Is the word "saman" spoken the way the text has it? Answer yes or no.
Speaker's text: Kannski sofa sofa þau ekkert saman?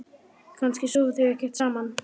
yes